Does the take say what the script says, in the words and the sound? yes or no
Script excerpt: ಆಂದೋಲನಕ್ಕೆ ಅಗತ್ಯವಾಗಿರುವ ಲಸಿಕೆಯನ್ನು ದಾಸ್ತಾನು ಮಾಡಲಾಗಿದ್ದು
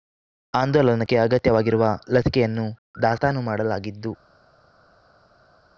yes